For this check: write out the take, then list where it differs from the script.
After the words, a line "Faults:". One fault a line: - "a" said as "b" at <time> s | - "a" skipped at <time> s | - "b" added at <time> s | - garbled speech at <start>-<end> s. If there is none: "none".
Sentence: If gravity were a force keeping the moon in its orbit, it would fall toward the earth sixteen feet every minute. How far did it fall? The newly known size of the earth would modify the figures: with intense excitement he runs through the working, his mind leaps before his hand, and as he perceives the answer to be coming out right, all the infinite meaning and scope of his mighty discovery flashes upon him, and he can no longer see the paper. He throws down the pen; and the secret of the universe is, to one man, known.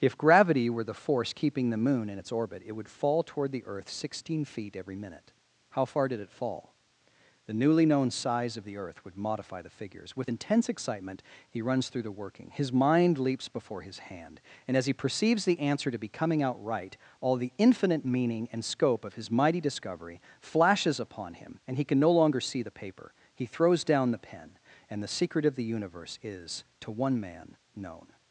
If gravity were the force keeping the moon in its orbit, it would fall toward the earth sixteen feet every minute. How far did it fall? The newly known size of the earth would modify the figures: with intense excitement he runs through the working, his mind leaps before his hand, and as he perceives the answer to be coming out right, all the infinite meaning and scope of his mighty discovery flashes upon him, and he can no longer see the paper. He throws down the pen; and the secret of the universe is, to one man, known.
Faults:
- "a" said as "the" at 0.8 s